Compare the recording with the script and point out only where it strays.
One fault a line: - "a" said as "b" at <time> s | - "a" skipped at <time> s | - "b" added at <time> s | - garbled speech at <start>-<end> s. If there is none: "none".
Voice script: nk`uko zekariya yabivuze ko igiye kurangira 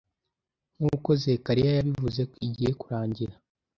none